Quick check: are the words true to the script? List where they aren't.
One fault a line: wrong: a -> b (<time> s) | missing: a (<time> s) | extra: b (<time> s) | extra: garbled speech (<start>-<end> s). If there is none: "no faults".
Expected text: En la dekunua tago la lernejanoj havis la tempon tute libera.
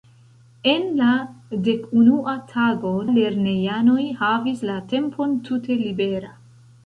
missing: la (3.0 s)